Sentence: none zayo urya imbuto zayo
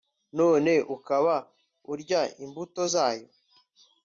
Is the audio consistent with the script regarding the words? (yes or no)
no